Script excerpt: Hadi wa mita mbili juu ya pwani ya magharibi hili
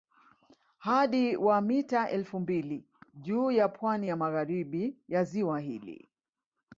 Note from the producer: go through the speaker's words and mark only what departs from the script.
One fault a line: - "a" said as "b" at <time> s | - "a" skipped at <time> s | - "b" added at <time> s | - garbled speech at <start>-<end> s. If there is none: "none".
- "elfu" added at 2.1 s
- "ya ziwa" added at 5.1 s